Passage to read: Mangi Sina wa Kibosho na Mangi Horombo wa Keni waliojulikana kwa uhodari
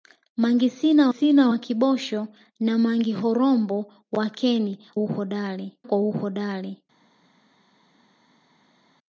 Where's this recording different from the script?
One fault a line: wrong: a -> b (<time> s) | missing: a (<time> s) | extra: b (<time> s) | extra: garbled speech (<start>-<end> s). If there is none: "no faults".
extra: Sina (1.1 s)
wrong: waliojulikana -> uhodari (4.9 s)